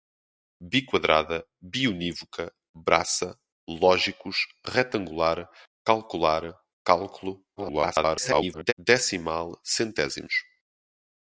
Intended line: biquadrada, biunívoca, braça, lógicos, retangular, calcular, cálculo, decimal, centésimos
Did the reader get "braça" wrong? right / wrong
right